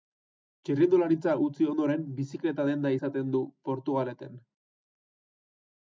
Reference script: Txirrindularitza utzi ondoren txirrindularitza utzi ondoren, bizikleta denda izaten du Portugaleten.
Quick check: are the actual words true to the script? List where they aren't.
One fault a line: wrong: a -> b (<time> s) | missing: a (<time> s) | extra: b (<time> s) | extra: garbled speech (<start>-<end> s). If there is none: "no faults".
missing: txirrindularitza utzi ondoren (2.1 s)